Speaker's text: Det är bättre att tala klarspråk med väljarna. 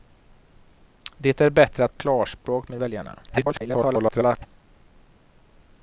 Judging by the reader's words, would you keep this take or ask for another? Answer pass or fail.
fail